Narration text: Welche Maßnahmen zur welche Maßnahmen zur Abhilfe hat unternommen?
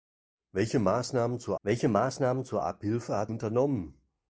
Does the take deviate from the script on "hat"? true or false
false